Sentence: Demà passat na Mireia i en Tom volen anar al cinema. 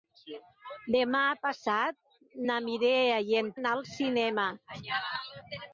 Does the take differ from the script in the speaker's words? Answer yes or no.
yes